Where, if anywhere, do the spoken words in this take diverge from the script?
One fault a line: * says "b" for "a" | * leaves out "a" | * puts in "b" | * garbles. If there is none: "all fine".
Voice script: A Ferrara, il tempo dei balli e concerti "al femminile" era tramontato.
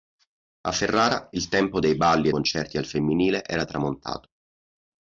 all fine